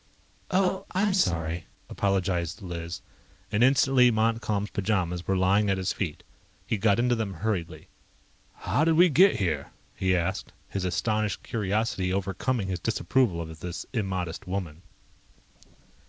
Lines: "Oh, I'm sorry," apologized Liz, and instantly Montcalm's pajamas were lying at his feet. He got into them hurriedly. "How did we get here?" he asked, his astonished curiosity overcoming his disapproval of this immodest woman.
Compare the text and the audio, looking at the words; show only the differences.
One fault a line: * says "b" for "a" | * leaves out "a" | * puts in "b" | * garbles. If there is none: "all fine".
all fine